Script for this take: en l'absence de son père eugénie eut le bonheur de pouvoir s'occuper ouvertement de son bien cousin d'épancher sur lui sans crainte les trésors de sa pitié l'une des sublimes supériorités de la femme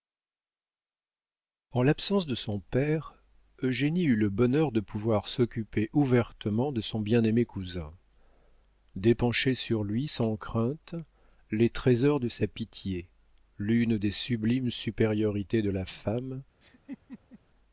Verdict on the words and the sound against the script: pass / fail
fail